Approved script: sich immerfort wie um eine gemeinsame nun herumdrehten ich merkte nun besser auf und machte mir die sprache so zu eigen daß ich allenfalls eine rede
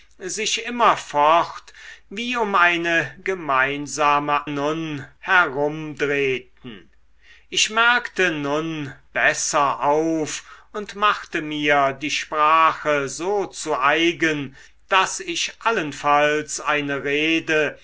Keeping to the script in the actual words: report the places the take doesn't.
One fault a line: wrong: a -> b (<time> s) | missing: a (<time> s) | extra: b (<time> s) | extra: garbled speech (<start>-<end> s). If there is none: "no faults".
no faults